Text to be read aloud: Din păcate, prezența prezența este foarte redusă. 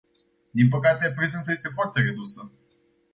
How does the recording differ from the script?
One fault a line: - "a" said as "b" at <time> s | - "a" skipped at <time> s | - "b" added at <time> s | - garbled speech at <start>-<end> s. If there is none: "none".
- "prezența" skipped at 1.5 s